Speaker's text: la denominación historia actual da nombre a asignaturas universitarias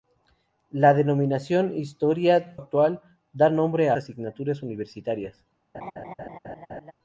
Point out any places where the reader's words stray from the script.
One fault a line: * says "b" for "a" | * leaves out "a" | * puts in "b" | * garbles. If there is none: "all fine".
all fine